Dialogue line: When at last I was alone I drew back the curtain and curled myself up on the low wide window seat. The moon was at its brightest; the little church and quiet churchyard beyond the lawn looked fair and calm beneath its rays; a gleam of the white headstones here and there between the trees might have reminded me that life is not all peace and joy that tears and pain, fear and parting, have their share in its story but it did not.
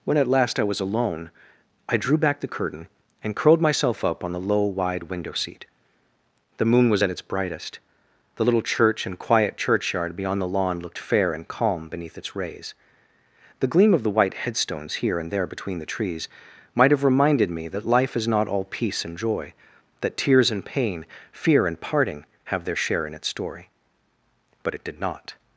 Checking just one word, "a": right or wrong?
wrong